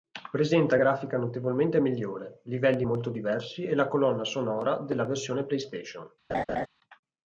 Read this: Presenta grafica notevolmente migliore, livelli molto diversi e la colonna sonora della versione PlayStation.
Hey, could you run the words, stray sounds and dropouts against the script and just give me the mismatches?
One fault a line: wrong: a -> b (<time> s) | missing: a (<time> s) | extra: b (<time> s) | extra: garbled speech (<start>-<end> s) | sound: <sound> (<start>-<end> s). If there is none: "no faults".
sound: laugh (6.3-6.7 s)